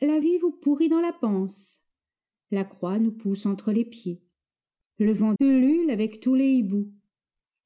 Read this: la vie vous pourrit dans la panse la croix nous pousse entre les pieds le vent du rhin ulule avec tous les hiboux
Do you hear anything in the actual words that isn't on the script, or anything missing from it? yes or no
yes